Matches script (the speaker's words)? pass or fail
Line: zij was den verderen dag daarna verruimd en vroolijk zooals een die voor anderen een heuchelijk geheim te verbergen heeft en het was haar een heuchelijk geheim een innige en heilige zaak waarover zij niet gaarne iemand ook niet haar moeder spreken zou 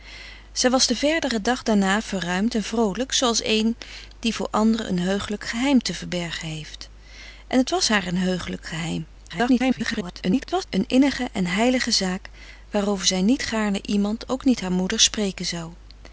fail